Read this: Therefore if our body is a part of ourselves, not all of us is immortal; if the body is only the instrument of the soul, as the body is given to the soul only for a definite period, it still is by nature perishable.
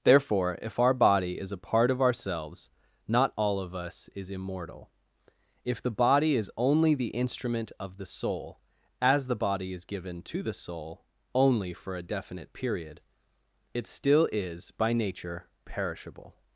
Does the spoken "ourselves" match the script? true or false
true